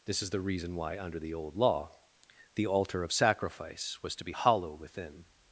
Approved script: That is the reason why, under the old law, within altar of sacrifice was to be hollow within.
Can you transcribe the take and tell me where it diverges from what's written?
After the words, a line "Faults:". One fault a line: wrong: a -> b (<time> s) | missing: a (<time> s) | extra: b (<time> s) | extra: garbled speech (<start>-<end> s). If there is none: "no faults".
This is the reason why, under the old law, the altar of sacrifice was to be hollow within.
Faults:
wrong: That -> This (0.1 s)
wrong: within -> the (2.5 s)